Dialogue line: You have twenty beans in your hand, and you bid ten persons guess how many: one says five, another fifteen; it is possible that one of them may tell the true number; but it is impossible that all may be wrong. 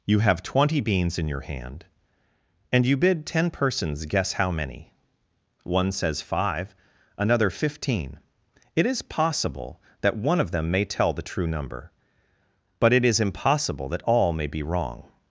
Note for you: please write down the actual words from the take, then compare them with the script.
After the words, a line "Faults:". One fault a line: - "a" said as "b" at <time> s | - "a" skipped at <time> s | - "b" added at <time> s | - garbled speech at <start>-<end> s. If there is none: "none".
You have twenty beans in your hand, and you bid ten persons guess how many: one says five, another fifteen; it is possible that one of them may tell the true number; but it is impossible that all may be wrong.
Faults:
none